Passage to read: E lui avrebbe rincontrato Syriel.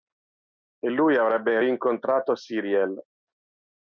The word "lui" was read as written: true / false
true